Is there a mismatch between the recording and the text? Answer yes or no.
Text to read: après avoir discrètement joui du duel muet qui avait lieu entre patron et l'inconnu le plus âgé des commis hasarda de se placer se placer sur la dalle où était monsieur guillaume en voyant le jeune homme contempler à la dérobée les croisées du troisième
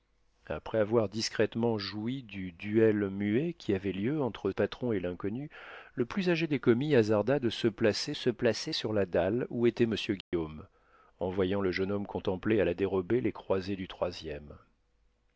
no